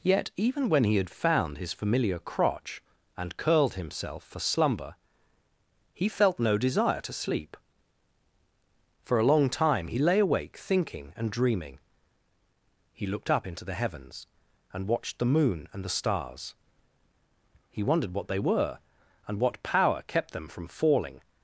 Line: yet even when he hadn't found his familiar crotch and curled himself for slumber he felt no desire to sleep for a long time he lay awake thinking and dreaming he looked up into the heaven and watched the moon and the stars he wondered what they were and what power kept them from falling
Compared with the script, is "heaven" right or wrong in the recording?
wrong